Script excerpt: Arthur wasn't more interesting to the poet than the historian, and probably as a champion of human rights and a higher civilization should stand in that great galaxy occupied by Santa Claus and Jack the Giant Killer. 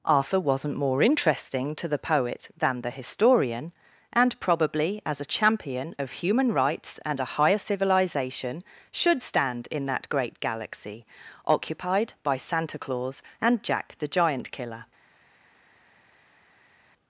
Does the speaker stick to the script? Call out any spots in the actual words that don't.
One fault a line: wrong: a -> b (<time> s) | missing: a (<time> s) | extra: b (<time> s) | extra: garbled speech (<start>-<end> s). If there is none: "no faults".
no faults